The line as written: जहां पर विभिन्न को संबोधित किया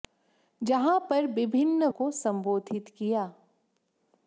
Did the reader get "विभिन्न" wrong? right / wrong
right